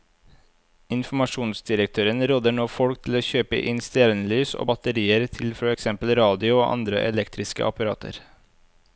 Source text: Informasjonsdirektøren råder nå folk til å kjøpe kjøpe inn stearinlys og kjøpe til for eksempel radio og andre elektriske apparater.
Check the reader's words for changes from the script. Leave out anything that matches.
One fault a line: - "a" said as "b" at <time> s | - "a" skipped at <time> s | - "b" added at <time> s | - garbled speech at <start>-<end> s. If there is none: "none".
- "kjøpe" skipped at 3.6 s
- "kjøpe" said as "batterier" at 4.7 s